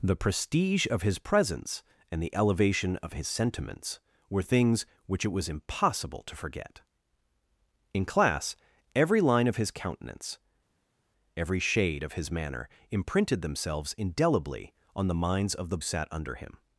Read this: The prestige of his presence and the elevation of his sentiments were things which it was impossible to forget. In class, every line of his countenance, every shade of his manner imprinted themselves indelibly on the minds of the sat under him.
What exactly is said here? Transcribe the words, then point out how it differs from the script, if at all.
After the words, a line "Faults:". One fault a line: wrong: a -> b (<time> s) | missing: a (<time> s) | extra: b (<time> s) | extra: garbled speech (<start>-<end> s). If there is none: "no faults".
The prestige of his presence and the elevation of his sentiments were things which it was impossible to forget. In class, every line of his countenance, every shade of his manner imprinted themselves indelibly on the minds of the sat under him.
Faults:
no faults